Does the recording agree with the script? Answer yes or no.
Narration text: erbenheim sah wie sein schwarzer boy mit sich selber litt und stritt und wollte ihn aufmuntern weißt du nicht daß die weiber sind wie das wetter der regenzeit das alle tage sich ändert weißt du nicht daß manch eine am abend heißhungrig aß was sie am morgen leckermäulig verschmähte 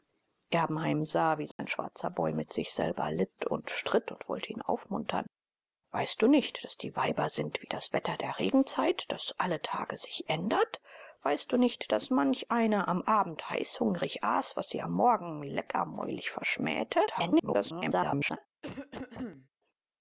no